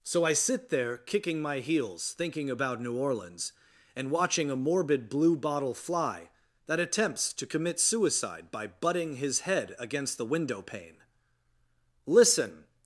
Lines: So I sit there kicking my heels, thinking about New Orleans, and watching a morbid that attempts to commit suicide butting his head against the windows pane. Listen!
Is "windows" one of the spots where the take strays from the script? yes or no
yes